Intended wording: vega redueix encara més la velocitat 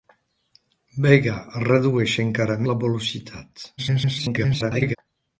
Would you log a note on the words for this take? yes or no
yes